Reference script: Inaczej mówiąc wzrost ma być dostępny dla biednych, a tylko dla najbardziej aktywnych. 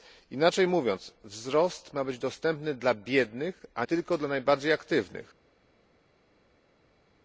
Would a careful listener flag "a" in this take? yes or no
no